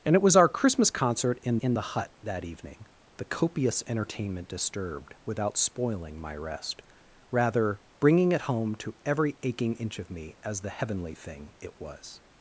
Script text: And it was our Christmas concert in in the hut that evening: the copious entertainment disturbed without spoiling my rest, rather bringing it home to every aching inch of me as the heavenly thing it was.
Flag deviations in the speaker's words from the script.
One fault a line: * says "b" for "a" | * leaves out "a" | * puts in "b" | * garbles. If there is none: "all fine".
all fine